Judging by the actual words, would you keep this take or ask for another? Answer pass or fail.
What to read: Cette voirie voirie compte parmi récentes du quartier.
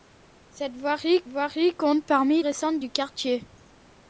pass